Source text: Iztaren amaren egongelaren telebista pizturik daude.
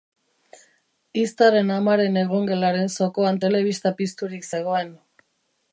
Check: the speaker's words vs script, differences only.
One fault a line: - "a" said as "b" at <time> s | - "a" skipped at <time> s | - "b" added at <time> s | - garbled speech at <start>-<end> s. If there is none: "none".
- "zokoan" added at 2.9 s
- "daude" said as "zegoen" at 4.5 s